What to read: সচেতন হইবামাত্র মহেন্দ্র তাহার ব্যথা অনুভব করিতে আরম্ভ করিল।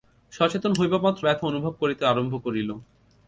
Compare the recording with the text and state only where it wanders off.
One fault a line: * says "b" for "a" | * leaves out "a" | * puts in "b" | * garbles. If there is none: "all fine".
* leaves out "মহেন্দ্র তাহার"